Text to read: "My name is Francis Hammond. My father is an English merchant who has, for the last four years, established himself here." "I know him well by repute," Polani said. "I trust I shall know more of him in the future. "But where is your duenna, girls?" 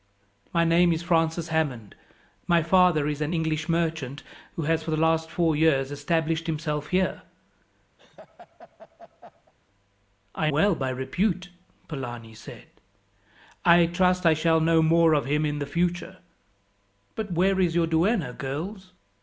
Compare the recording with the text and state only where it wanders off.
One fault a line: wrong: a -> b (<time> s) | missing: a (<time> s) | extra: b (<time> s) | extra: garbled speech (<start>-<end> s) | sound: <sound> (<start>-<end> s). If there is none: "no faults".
sound: laugh (8.0-9.5 s)
missing: know him (10.5 s)